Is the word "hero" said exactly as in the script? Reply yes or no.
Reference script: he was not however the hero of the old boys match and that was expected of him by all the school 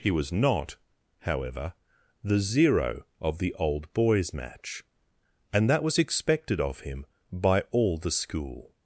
no